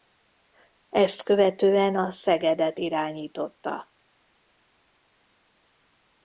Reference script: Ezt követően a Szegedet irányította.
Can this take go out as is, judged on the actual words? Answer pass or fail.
pass